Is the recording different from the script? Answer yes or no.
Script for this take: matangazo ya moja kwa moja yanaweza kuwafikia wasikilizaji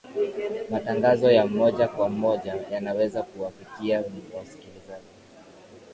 no